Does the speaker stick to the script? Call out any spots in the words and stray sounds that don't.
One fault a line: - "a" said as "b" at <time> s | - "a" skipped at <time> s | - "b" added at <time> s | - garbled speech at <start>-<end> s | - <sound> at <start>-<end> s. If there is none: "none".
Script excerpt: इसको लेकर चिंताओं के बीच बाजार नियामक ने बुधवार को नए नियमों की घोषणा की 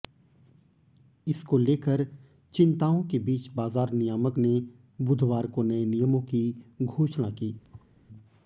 - thud at 7.6-7.9 s